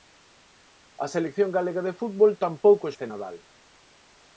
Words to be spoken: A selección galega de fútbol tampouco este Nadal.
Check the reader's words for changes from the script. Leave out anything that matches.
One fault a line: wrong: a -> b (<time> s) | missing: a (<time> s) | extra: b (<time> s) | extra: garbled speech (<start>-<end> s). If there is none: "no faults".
no faults